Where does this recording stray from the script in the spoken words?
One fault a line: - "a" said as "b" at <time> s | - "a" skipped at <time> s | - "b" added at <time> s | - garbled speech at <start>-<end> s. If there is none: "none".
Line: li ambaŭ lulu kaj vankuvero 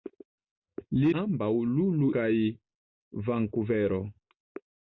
none